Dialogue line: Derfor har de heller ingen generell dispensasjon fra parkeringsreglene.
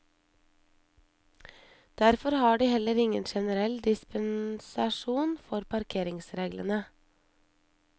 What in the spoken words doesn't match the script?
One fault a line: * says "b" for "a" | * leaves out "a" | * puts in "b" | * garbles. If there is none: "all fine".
all fine